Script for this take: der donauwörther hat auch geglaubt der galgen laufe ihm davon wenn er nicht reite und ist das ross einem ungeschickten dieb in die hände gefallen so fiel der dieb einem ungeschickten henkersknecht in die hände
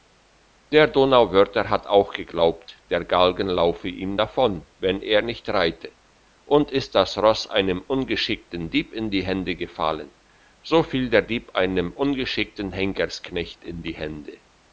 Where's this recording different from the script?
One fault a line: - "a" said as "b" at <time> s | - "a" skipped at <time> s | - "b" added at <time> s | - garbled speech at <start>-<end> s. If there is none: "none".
none